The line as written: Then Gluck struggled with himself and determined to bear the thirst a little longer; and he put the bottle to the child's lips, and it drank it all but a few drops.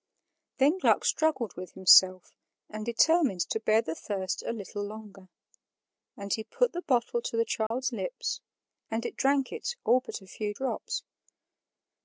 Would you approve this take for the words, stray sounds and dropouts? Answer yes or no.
no